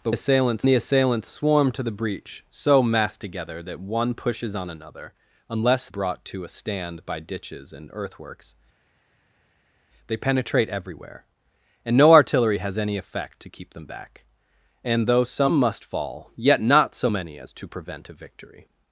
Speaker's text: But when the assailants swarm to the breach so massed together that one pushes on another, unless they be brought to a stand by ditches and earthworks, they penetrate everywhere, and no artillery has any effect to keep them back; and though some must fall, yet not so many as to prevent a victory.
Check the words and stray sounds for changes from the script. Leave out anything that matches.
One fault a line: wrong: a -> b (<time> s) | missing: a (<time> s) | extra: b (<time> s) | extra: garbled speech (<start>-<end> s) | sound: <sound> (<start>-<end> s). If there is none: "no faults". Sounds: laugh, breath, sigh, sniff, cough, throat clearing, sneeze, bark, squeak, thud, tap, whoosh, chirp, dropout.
wrong: when -> assailants (0.1 s)
missing: they be (5.9 s)